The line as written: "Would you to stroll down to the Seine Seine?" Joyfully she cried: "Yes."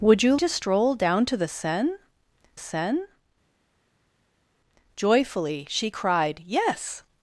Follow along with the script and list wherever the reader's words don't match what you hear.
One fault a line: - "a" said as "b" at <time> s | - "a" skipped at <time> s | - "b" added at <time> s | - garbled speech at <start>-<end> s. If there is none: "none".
none